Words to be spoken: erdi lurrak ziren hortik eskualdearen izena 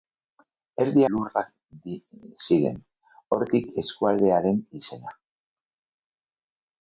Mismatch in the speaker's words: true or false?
false